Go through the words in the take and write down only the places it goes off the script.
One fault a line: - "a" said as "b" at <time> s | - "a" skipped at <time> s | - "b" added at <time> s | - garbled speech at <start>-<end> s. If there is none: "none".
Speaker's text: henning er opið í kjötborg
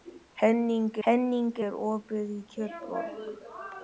- "henning" added at 1.1 s